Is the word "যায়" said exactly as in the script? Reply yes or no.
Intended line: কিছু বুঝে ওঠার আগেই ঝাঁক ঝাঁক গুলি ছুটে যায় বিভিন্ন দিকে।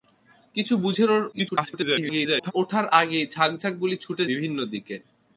no